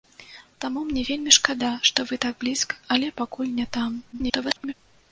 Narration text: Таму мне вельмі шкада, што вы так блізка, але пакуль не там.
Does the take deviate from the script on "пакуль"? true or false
false